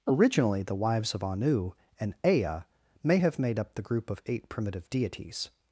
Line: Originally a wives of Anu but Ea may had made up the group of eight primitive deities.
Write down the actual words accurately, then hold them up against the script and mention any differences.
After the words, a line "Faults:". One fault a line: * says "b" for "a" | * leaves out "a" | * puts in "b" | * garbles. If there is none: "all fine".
Originally the wives of Anu and Ea may have made up the group of eight primitive deities.
Faults:
* says "the" for "a"
* says "and" for "but"
* says "have" for "had"